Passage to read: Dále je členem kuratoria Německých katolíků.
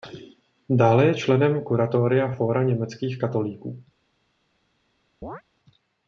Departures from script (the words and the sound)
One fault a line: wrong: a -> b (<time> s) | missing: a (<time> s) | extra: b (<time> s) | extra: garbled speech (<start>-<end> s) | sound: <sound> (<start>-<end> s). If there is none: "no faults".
extra: Fóra (2.3 s)
sound: chirp (5.2-5.4 s)